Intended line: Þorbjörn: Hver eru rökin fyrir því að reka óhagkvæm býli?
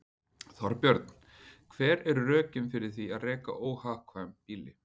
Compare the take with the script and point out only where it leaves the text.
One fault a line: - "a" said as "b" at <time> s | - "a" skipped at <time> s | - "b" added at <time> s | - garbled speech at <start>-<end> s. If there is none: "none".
none